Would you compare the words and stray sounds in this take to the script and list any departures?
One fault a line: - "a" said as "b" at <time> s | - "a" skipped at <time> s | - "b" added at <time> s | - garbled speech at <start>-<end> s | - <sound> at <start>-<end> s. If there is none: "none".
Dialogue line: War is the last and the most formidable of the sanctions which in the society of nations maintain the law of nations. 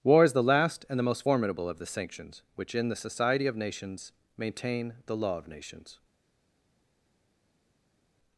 none